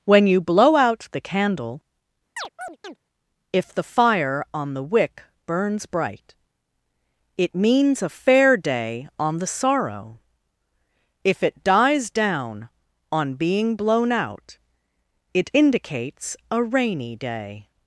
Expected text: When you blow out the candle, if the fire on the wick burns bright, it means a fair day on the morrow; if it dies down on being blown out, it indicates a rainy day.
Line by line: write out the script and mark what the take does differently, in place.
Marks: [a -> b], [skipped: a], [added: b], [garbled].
When you blow out the candle, if the fire on the wick burns bright, it means a fair day on the [morrow; -> sorrow] if it dies down on being blown out, it indicates a rainy day.